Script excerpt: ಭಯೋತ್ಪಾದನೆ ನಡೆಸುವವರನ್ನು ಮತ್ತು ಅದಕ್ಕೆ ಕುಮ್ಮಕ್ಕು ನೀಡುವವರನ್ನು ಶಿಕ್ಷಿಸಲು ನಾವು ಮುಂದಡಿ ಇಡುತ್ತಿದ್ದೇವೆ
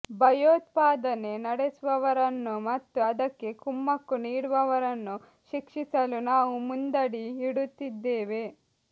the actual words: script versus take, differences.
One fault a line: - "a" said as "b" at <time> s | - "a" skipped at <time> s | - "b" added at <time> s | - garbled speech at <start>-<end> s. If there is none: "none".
none